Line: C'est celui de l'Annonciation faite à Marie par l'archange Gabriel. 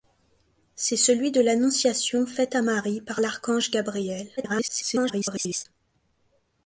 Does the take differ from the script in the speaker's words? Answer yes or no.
yes